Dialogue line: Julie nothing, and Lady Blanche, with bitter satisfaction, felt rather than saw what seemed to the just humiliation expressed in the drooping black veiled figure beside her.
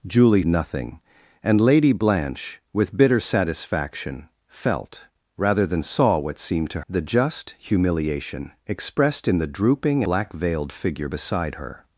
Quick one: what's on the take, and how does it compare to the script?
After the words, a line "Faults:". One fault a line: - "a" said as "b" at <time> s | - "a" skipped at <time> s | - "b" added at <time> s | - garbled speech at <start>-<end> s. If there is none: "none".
Julie nothing, and Lady Blanche, with bitter satisfaction, felt rather than saw what seemed to the just humiliation expressed in the drooping black veiled figure beside her.
Faults:
none